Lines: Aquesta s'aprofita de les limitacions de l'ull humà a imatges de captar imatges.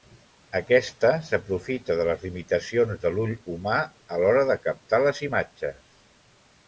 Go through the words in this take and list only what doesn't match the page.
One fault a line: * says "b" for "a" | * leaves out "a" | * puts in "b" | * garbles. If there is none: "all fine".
* says "l'hora" for "imatges"
* puts in "les"